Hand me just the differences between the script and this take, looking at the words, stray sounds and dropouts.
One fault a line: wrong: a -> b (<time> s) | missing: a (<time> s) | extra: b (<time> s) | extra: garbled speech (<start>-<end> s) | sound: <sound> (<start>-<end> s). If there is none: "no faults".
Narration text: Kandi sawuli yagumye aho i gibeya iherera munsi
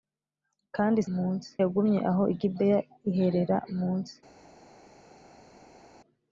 wrong: sawuli -> munsi (1.1 s)